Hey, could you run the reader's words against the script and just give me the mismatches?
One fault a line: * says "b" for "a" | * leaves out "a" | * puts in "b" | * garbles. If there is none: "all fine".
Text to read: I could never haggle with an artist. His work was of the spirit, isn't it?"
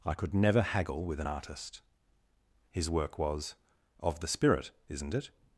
all fine